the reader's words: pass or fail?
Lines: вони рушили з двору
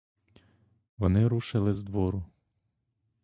pass